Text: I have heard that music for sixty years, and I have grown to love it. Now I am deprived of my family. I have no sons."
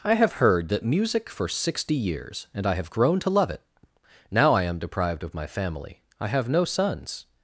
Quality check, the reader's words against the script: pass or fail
pass